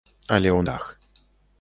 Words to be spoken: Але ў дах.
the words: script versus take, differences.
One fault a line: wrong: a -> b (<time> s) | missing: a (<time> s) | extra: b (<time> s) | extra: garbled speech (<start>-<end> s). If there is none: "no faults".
no faults